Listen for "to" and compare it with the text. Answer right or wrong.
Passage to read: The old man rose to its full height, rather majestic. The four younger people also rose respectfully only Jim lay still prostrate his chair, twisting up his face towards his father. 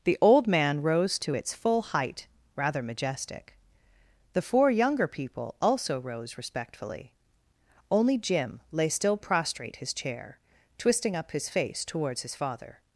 right